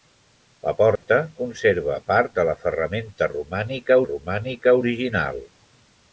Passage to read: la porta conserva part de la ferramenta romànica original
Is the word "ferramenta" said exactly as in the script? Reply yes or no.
yes